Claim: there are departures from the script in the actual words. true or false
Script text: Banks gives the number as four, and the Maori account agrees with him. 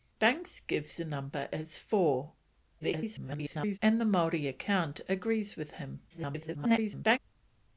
true